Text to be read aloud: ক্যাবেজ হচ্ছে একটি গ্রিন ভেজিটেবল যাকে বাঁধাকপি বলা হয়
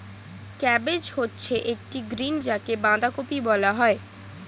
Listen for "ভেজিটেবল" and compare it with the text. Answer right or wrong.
wrong